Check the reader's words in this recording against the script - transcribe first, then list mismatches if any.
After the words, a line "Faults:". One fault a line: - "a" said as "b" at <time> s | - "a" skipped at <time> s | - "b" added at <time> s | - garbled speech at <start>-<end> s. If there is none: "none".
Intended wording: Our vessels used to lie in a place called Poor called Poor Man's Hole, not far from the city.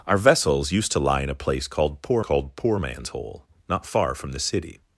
Our vessels used to lie in a place called Poor called Poor Man's Hole, not far from the city.
Faults:
none